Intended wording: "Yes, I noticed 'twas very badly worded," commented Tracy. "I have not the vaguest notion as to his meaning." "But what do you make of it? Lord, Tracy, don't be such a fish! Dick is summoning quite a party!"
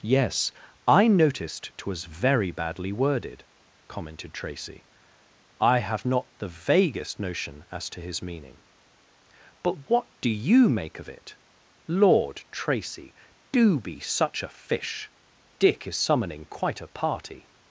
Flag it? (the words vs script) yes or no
yes